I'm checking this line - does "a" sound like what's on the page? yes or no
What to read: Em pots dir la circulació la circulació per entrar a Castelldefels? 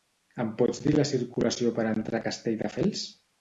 yes